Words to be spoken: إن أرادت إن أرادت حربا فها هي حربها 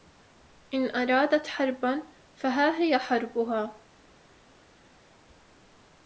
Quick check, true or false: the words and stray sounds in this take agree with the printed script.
false